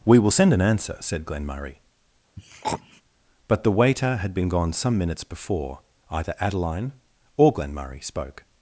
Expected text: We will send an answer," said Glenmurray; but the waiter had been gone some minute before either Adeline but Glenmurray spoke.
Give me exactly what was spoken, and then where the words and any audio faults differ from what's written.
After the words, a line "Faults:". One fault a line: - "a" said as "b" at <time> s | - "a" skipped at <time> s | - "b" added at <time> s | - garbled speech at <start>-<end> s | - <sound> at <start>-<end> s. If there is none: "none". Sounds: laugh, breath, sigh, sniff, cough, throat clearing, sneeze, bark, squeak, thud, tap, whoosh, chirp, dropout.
We will send an answer," said Glenmurray; but the waiter had been gone some minutes before either Adeline or Glenmurray spoke.
Faults:
- throat clearing at 2.4-3.0 s
- "minute" said as "minutes" at 5.0 s
- "but" said as "or" at 7.4 s